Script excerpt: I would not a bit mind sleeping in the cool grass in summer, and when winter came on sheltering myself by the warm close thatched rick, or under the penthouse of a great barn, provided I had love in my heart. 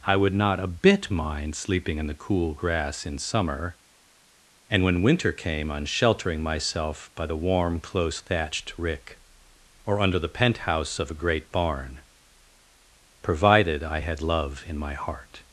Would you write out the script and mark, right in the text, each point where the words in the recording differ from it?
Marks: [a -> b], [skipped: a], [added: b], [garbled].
I would not a bit mind sleeping in the cool grass in summer, and when winter came on sheltering myself by the warm close thatched rick, or under the penthouse of a great barn, provided I had love in my heart.